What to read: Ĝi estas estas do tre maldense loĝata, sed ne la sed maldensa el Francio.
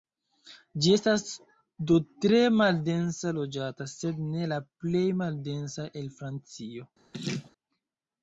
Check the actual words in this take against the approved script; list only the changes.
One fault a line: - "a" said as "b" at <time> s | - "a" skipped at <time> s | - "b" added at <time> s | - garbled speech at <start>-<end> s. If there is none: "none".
- "estas" skipped at 1.2 s
- "sed" said as "plej" at 4.8 s